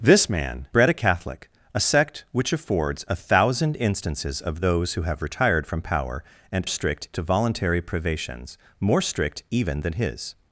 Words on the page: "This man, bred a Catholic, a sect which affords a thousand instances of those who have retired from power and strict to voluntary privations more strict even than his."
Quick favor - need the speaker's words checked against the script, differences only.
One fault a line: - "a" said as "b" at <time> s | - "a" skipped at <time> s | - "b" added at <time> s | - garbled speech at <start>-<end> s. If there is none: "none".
none